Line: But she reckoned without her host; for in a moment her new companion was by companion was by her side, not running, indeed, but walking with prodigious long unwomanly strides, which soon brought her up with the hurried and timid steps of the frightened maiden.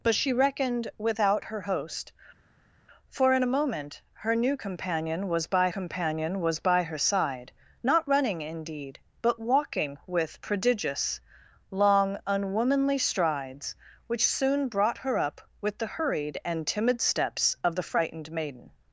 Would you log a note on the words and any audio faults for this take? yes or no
no